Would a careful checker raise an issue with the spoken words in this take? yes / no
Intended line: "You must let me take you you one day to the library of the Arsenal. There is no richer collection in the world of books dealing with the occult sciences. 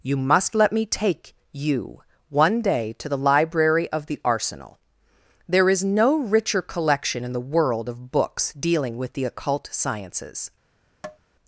yes